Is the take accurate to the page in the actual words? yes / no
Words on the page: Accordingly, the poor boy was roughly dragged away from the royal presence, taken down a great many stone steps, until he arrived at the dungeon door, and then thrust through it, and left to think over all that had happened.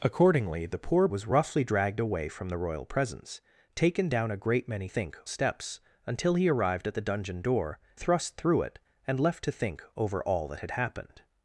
no